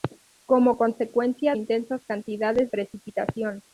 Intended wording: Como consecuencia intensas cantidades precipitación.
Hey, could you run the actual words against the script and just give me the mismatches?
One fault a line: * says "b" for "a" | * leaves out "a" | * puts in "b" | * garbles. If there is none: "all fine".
all fine